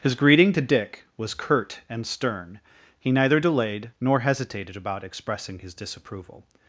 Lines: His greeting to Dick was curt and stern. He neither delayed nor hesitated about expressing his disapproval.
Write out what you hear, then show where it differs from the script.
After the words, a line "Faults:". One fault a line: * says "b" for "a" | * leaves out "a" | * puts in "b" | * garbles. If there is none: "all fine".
His greeting to Dick was curt and stern. He neither delayed nor hesitated about expressing his disapproval.
Faults:
all fine